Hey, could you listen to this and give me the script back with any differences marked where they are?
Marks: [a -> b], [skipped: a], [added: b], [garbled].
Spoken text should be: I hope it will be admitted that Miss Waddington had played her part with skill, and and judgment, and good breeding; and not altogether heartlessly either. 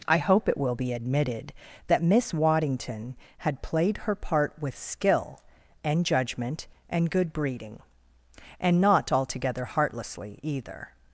I hope it will be admitted that Miss Waddington had played her part with skill, and [skipped: and] judgment, and good breeding; and not altogether heartlessly either.